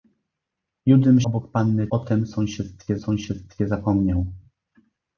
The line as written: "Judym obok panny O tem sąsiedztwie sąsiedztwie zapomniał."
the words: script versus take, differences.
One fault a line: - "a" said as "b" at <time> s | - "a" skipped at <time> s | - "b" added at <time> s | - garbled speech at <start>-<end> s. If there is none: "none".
none